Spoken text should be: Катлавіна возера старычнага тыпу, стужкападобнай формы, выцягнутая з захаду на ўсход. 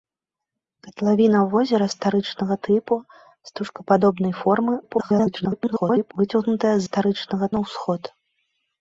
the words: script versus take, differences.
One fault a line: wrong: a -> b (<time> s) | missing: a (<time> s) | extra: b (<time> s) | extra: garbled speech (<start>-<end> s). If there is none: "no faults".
extra: garbled speech (4.8-6.1 s)
wrong: захаду -> старычнага (6.9 s)